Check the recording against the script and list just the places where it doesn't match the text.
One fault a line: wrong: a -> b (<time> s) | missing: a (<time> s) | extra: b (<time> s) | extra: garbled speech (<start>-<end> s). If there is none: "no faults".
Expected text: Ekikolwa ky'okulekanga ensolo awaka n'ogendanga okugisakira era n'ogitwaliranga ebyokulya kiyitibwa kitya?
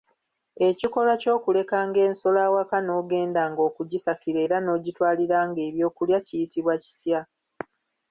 no faults